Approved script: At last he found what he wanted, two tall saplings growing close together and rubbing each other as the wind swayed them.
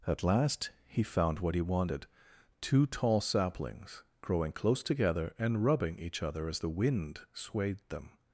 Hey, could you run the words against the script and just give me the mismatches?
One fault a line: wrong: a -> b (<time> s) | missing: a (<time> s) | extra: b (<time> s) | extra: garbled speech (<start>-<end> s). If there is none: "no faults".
no faults